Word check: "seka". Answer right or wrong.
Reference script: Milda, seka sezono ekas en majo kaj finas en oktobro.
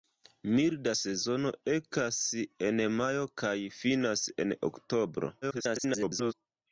wrong